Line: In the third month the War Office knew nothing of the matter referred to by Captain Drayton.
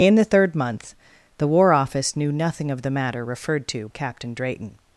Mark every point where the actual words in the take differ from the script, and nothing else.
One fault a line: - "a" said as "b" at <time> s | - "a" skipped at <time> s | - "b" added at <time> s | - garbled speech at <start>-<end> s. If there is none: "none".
- "by" skipped at 3.9 s